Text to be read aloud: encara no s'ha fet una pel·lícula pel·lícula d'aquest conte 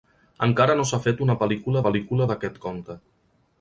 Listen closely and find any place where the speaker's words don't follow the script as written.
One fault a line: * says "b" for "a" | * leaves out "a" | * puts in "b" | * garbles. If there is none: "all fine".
all fine